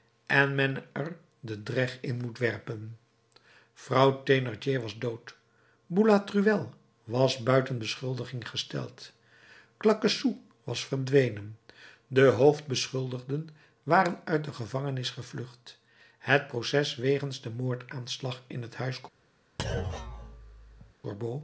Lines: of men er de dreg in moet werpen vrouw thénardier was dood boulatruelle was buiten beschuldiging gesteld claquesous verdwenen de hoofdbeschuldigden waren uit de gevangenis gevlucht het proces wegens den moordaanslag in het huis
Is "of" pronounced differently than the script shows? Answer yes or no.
yes